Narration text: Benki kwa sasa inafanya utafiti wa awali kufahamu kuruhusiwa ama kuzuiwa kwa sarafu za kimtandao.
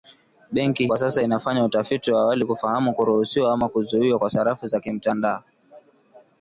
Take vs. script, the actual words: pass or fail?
pass